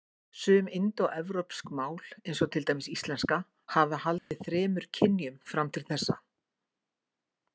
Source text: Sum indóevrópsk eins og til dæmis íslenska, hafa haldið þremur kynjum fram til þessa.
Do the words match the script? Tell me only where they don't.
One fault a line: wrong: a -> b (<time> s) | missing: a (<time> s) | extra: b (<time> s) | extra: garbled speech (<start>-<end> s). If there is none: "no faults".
extra: mál (1.8 s)